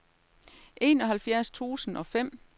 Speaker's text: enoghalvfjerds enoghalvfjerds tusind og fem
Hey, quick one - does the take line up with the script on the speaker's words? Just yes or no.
no